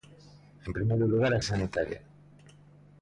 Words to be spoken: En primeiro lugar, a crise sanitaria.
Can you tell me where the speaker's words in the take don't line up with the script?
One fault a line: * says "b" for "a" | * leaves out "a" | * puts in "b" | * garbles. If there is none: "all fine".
* leaves out "crise"